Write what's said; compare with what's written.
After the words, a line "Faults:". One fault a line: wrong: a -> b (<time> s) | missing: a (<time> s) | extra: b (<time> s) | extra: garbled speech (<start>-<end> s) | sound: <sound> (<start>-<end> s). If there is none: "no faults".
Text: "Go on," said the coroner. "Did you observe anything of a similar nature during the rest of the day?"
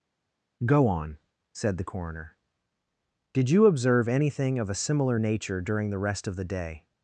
"Go on," said the coroner. "Did you observe anything of a similar nature during the rest of the day?"
Faults:
no faults